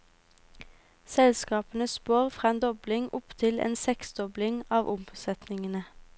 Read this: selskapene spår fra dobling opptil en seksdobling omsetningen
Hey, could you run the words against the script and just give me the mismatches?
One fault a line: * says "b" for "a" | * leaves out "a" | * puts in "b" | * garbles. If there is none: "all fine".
* puts in "en"
* puts in "av"